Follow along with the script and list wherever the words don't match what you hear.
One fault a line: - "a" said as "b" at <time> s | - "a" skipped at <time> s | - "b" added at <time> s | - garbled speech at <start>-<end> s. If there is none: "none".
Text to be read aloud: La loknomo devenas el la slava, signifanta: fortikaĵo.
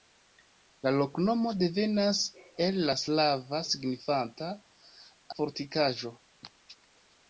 none